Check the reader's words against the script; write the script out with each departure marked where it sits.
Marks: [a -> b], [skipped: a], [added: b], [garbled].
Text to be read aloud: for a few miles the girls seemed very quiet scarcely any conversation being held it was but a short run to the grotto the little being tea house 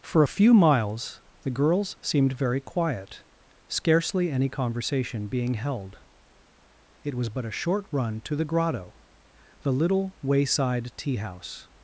for a few miles the girls seemed very quiet scarcely any conversation being held it was but a short run to the grotto the little [being -> wayside] tea house